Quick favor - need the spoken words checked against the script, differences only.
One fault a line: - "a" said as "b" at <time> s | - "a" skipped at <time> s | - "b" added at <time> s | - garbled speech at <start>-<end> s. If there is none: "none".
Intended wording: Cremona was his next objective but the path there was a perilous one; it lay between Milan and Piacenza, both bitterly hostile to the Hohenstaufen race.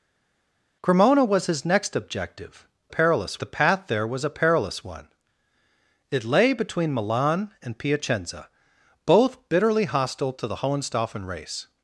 - "but" said as "perilous" at 2.9 s